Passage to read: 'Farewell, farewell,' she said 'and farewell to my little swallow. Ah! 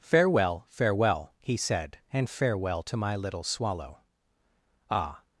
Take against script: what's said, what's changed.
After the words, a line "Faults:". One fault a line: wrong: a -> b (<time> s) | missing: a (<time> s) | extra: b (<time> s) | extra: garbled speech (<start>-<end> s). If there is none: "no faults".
'Farewell, farewell,' he said 'and farewell to my little swallow. Ah!
Faults:
wrong: she -> he (1.4 s)